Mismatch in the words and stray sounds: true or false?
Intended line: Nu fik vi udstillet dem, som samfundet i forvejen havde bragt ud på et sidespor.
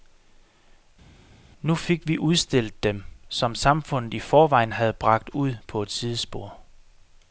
false